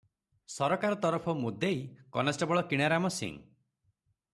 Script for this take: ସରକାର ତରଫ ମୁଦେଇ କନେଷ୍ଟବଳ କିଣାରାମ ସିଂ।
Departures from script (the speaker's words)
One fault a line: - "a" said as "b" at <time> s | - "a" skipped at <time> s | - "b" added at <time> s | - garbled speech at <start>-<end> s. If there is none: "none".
none